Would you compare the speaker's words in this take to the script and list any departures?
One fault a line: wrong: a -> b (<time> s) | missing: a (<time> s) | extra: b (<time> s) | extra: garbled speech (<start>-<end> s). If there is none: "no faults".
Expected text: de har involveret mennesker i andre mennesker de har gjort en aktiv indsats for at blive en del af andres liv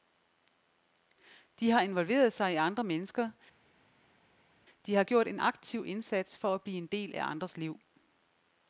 wrong: mennesker -> sig (2.3 s)